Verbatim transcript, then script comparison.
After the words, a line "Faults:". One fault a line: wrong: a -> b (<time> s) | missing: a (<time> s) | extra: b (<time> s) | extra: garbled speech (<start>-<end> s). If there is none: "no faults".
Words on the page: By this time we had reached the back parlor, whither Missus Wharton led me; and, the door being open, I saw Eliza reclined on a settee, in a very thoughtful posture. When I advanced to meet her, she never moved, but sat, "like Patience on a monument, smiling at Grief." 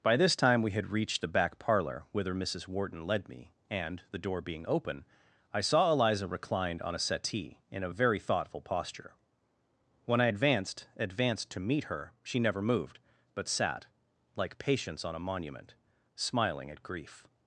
By this time we had reached the back parlor, whither Missus Wharton led me; and, the door being open, I saw Eliza reclined on a settee, in a very thoughtful posture. When I advanced advanced to meet her, she never moved, but sat, "like Patience on a monument, smiling at Grief."
Faults:
extra: advanced (11.0 s)